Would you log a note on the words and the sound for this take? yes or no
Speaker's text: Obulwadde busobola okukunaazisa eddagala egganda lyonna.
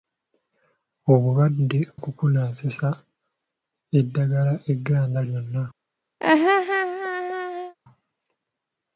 yes